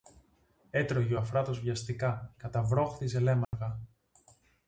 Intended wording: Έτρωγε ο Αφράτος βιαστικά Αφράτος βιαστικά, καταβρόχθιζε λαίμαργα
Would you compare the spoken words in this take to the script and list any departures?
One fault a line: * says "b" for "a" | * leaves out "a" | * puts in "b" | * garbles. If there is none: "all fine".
* leaves out "Αφράτος βιαστικά"